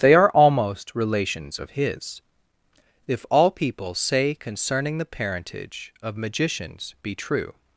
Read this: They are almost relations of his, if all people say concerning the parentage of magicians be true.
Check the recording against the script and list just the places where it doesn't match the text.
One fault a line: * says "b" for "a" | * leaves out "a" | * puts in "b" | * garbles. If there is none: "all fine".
all fine